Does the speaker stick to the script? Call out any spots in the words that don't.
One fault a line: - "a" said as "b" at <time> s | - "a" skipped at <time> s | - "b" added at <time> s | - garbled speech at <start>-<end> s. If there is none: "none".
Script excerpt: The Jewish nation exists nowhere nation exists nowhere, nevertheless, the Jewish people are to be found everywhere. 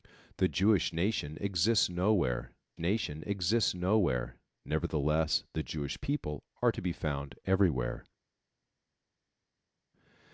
none